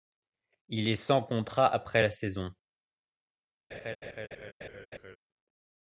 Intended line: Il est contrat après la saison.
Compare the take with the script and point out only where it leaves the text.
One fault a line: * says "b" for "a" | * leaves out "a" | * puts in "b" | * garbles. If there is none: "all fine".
* puts in "sans"